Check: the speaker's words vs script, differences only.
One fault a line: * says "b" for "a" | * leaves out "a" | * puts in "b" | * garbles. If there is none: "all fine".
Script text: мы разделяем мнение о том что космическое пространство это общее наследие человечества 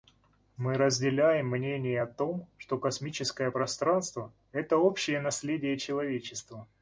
all fine